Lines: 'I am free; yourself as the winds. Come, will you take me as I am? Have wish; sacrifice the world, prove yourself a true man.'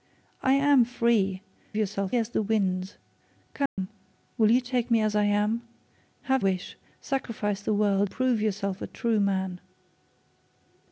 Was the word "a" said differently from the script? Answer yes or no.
no